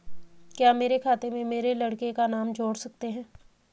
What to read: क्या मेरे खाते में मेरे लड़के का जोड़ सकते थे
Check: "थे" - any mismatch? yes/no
yes